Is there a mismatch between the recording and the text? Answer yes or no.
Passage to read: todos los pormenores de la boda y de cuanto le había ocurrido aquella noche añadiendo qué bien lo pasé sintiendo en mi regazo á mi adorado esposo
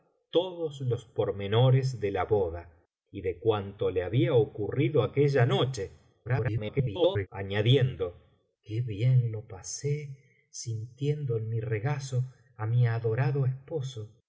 yes